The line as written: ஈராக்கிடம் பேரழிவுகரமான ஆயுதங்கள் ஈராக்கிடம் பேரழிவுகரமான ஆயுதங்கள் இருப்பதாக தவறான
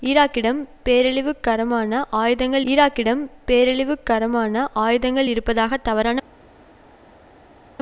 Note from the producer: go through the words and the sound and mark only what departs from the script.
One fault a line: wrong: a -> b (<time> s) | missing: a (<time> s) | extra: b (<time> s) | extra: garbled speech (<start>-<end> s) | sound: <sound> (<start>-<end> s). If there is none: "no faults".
no faults